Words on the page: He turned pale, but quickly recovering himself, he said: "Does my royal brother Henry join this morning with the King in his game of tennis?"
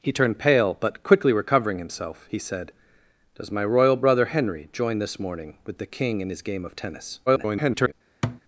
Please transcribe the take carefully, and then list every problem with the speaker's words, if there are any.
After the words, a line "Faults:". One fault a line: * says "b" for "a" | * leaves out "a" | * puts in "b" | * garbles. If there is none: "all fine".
He turned pale, but quickly recovering himself, he said: "Does my royal brother Henry join this morning with the King in his game of tennis?" [garbled]
Faults:
* garbles